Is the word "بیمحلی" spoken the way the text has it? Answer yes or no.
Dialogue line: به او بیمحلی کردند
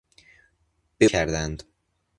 no